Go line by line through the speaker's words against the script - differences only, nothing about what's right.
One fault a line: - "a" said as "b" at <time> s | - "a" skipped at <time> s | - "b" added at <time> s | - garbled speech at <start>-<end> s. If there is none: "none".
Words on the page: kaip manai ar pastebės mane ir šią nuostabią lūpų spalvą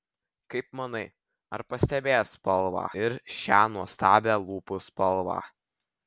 - "mane" said as "spalvą" at 2.4 s